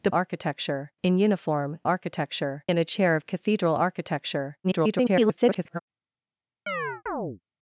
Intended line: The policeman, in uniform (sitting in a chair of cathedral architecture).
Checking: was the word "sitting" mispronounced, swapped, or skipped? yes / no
yes